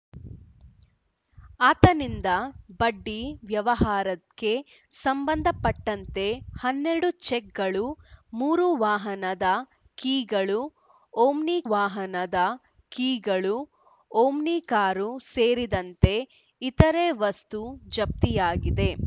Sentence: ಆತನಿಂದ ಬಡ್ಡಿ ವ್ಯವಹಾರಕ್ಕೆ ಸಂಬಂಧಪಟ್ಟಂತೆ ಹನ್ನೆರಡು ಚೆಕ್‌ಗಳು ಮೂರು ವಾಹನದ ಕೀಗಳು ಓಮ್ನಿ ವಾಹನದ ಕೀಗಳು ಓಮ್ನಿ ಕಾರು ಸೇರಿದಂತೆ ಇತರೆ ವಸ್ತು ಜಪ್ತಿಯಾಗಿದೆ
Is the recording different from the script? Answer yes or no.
no